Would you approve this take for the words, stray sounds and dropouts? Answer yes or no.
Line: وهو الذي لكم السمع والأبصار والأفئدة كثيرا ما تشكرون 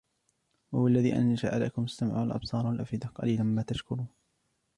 no